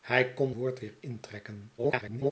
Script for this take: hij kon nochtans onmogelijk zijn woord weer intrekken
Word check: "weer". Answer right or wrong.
right